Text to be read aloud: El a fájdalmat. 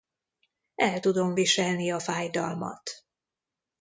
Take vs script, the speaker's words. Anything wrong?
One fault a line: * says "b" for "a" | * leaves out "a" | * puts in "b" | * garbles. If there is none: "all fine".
* puts in "tudom viselni"